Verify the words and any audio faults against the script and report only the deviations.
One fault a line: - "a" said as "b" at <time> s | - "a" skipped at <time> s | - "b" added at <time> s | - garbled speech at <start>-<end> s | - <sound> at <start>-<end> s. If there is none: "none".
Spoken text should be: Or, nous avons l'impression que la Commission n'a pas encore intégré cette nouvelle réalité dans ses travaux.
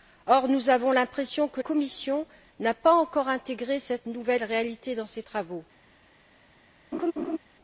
- "la" skipped at 1.6 s
- laugh at 6.9-7.4 s